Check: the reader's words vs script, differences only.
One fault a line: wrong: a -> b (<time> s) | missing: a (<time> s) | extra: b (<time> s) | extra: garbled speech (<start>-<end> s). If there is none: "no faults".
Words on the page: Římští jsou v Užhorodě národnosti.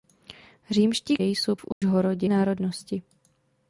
no faults